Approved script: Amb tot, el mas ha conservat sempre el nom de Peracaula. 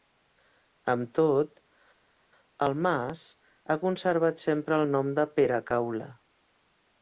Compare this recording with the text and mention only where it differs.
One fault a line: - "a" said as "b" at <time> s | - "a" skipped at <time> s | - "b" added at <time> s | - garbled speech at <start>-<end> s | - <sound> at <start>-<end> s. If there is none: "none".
none